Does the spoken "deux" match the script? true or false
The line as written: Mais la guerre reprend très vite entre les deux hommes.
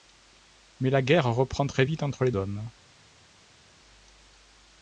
false